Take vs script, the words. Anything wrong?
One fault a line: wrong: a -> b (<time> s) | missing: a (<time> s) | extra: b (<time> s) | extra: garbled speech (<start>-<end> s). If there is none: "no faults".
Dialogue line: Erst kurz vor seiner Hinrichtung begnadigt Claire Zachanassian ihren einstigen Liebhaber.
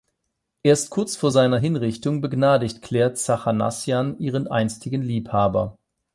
no faults